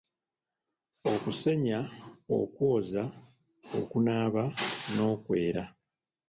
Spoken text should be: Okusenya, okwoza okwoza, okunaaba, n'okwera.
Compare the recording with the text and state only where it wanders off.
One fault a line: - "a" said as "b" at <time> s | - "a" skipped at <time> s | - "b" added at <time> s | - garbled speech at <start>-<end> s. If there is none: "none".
- "okwoza" skipped at 3.0 s